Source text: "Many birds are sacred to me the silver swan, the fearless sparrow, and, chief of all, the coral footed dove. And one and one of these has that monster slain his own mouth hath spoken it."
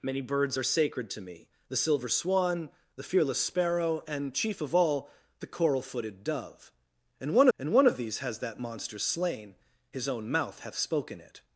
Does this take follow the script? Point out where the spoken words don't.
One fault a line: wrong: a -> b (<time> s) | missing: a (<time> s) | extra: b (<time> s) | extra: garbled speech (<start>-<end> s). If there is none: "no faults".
no faults